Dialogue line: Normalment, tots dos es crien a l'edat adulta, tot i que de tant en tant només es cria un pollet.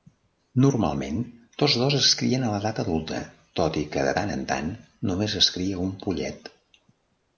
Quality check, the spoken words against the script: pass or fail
pass